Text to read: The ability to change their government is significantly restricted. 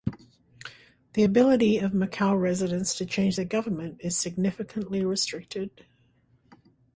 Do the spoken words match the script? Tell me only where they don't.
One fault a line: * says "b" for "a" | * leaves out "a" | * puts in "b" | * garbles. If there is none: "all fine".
* puts in "of Macau residents"